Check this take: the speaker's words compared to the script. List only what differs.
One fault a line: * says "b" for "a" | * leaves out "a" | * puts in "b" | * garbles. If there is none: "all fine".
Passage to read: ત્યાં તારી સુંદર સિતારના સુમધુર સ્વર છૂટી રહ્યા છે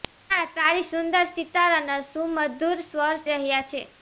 * leaves out "છૂટી"